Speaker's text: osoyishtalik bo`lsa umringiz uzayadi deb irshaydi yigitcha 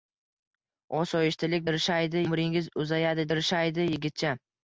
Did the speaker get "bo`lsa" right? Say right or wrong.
wrong